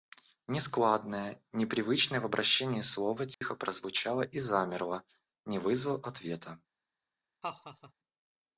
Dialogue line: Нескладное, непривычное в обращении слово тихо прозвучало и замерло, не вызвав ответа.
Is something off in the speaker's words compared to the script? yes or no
no